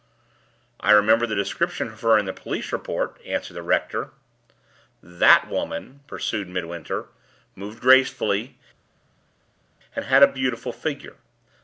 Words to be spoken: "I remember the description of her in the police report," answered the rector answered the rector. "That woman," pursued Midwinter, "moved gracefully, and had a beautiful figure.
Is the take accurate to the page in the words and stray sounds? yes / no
no